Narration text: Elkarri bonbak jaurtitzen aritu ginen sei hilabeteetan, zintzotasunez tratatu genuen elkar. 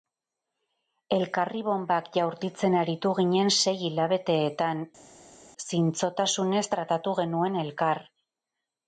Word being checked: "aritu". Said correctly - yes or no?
yes